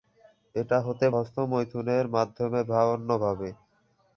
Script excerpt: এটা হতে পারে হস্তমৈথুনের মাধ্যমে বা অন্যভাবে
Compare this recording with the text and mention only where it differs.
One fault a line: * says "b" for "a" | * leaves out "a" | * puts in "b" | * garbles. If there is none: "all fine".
* leaves out "পারে"